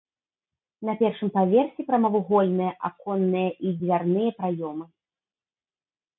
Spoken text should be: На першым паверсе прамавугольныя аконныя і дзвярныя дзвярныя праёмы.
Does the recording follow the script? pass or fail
fail